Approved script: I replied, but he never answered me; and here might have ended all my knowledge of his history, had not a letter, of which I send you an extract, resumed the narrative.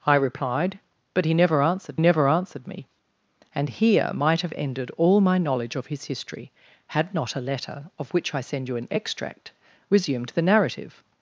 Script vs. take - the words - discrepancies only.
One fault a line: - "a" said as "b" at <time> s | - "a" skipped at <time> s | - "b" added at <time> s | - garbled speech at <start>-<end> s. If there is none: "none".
- "never answered" added at 2.0 s